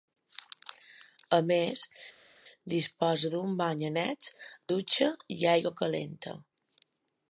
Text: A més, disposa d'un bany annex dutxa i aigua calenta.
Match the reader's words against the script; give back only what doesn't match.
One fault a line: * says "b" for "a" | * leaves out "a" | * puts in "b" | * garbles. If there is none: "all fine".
all fine